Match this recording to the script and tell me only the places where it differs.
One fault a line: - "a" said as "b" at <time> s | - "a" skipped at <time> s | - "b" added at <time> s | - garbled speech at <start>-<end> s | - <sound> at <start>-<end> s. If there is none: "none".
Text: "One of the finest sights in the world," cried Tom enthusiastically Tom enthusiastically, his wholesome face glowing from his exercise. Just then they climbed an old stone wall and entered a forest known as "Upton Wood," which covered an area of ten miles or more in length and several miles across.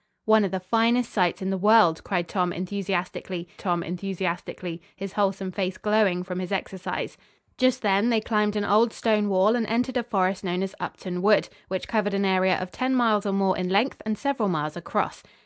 none